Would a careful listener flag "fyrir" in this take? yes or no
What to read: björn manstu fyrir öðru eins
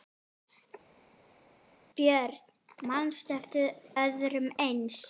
yes